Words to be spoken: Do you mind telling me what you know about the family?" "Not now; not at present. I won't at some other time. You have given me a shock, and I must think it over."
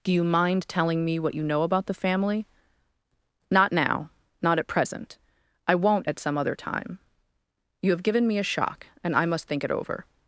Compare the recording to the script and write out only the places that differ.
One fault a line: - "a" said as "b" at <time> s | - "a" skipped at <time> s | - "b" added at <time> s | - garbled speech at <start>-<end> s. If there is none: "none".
none